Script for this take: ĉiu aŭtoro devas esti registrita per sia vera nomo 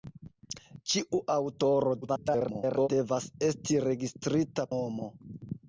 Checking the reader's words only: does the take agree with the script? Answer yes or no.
no